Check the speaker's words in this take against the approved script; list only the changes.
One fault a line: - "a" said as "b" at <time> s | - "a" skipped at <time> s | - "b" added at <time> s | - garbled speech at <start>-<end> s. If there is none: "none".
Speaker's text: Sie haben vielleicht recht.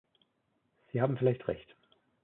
none